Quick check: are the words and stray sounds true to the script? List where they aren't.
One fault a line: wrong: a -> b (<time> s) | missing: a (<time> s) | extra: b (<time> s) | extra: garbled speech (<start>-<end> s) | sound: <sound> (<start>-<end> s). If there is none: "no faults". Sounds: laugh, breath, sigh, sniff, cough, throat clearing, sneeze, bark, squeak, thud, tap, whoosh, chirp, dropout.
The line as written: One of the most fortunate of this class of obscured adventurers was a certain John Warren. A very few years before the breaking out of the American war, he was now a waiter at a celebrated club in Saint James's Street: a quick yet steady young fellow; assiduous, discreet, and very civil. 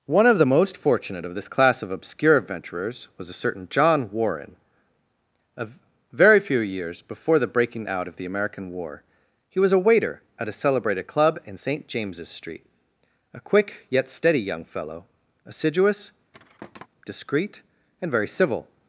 wrong: obscured -> obscure (1.9 s)
missing: now (9.7 s)
sound: thud (16.3-16.9 s)